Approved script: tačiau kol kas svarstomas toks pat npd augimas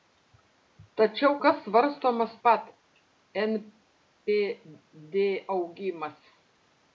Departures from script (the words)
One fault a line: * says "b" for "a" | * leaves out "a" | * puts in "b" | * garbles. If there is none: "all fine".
* leaves out "kol"
* leaves out "toks"